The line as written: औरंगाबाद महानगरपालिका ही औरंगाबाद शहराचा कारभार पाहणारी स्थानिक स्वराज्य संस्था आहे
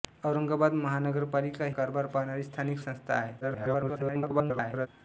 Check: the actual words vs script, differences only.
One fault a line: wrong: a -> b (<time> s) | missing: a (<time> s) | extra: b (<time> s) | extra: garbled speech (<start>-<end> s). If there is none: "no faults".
missing: ही औरंगाबाद शहराचा (1.6 s)
missing: स्वराज्य (2.8 s)
extra: garbled speech (3.4-4.9 s)